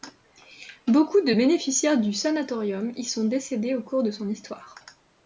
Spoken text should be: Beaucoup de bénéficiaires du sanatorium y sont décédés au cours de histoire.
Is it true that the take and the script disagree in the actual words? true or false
true